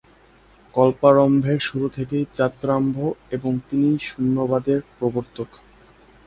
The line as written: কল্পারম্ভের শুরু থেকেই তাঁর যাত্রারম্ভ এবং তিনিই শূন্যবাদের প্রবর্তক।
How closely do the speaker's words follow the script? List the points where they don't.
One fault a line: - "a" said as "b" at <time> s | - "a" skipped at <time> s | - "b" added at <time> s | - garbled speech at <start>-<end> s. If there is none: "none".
- "তাঁর" skipped at 2.2 s